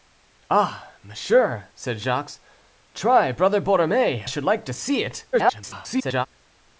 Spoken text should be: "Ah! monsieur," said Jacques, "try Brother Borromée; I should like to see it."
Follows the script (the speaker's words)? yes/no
no